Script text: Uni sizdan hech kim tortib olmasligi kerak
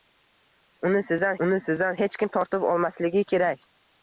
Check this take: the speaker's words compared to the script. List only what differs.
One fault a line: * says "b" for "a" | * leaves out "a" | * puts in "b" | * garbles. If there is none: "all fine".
* puts in "uni sizdan"